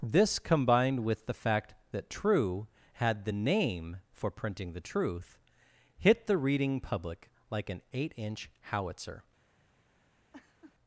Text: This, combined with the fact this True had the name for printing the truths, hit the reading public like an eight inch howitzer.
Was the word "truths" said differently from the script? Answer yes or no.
yes